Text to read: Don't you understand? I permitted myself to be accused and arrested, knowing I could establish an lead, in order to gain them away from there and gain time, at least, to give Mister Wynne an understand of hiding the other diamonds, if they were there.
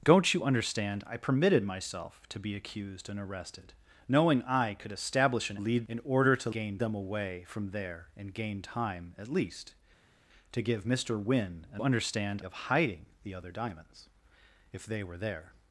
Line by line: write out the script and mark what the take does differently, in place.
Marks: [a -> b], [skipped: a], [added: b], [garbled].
Don't you understand? I permitted myself to be accused and arrested, knowing I could establish an lead, in order to gain them away from there and gain time, at least, to give Mister Wynne an understand of hiding the other diamonds, if they were there.